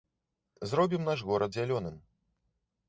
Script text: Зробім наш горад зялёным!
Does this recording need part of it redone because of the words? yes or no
no